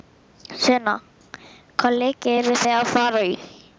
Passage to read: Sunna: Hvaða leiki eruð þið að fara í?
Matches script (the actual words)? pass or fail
pass